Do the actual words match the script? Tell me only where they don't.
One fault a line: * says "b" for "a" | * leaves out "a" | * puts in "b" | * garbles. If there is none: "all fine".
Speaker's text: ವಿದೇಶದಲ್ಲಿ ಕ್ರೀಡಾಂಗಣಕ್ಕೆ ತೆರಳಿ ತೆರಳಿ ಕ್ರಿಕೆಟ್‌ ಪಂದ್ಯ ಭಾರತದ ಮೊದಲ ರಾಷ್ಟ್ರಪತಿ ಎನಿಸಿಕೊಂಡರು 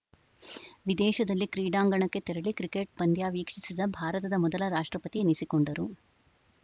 * leaves out "ತೆರಳಿ"
* puts in "ವೀಕ್ಷಿಸಿದ"